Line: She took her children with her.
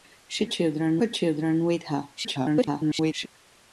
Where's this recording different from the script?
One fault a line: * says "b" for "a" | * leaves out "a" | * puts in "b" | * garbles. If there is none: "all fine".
* says "children" for "took"
* garbles